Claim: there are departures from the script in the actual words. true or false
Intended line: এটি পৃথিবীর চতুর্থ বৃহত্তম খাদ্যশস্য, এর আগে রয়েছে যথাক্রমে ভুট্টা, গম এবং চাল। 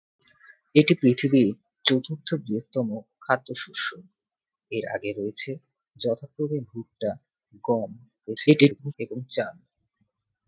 true